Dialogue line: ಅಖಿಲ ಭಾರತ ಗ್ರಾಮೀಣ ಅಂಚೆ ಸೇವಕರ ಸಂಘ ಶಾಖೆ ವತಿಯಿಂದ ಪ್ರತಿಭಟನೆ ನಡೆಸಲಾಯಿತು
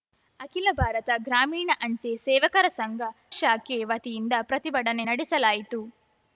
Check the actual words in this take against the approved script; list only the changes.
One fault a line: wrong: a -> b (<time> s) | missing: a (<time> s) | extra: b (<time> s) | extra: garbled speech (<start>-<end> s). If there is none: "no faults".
no faults